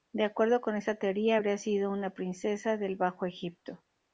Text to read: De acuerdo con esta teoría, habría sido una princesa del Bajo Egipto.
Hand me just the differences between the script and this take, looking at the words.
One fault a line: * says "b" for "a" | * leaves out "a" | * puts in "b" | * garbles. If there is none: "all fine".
all fine